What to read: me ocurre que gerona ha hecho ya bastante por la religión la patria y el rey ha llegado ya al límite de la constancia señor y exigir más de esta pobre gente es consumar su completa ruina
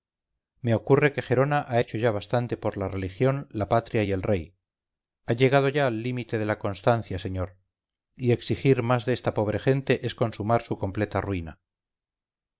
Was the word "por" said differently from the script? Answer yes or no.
no